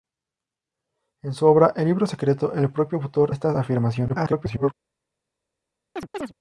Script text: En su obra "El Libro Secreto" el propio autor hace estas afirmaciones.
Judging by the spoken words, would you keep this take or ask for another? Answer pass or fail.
fail